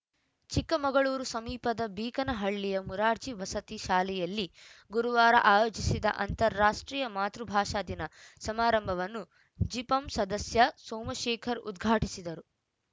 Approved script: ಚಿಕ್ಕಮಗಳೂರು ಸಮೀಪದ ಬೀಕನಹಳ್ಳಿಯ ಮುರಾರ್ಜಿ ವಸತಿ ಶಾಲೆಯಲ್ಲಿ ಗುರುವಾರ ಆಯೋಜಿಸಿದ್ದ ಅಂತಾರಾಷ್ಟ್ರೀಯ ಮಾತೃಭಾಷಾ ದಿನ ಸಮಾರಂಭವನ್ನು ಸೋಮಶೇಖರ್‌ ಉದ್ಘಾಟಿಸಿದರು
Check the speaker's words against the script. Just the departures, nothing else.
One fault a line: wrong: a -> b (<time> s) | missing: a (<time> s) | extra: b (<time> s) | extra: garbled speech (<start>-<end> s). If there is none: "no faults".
extra: ಜಿಪಂ ಸದಸ್ಯ (9.6 s)